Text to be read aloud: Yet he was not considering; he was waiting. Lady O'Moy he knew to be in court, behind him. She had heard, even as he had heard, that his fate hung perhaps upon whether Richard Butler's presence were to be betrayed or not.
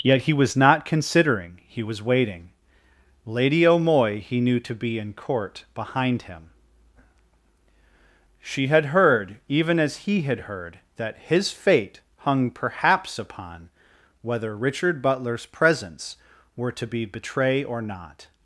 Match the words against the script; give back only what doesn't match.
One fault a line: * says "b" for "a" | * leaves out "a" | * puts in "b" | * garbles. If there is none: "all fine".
* says "betray" for "betrayed"